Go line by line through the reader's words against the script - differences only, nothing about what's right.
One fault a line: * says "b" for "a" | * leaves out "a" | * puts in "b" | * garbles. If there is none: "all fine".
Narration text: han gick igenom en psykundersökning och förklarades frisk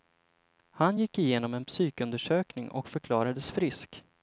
all fine